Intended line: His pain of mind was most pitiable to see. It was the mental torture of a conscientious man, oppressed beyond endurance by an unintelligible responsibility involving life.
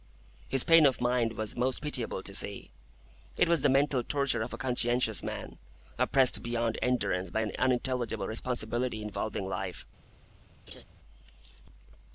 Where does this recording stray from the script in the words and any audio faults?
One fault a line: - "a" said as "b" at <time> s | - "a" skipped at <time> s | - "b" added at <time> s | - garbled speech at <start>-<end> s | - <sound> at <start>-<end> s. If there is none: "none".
- laugh at 10.7-10.8 s